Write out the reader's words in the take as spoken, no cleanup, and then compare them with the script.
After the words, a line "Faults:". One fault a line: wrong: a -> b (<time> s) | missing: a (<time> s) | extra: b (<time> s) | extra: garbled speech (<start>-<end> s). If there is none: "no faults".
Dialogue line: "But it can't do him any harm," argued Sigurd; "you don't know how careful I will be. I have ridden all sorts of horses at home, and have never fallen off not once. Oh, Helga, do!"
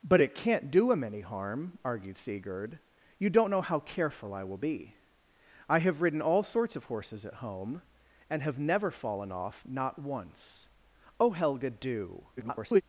"But it can't do him any harm," argued Sigurd; "you don't know how careful I will be. I have ridden all sorts of horses at home, and have never fallen off not once. Oh, Helga, do!" [garbled]
Faults:
extra: garbled speech (12.4-12.8 s)